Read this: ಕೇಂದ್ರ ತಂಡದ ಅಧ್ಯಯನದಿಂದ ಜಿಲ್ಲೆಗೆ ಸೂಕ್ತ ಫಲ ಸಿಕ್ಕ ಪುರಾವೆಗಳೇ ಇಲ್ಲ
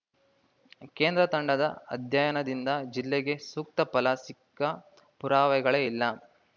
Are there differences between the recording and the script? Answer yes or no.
no